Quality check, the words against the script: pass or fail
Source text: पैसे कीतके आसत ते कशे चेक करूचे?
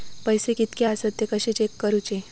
pass